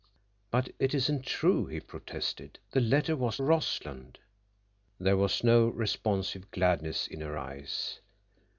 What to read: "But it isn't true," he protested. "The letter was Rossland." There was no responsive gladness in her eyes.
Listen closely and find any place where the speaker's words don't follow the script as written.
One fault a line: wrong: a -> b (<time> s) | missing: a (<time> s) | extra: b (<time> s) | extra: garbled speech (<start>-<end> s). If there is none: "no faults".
no faults